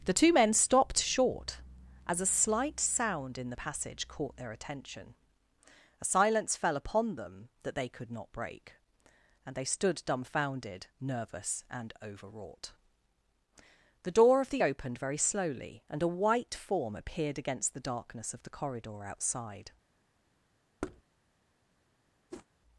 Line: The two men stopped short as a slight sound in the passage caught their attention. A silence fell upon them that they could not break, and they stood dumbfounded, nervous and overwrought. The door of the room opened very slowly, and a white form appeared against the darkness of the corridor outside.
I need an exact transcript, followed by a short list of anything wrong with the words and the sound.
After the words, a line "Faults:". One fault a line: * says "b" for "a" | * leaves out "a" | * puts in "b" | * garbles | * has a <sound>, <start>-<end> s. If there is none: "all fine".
The two men stopped short as a slight sound in the passage caught their attention. A silence fell upon them that they could not break, and they stood dumbfounded, nervous and overwrought. The door of the opened very slowly, and a white form appeared against the darkness of the corridor outside.
Faults:
* leaves out "room"
* has a thud, 20.8-21.0 s
* has a whoosh, 22.3-22.5 s